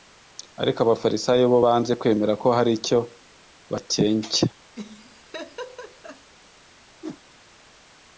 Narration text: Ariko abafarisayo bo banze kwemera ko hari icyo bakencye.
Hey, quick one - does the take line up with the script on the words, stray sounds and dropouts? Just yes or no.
no